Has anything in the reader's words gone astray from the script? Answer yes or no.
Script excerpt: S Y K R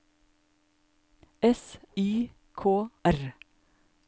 no